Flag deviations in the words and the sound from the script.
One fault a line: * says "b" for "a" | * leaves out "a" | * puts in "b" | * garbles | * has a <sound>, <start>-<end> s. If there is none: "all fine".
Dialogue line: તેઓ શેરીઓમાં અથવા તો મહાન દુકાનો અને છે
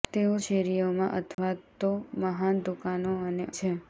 * has a dropout, 1.3-1.4 s